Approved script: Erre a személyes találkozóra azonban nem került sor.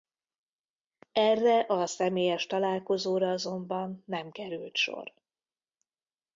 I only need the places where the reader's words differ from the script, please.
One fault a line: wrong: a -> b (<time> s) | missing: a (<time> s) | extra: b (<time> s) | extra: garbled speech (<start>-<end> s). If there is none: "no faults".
no faults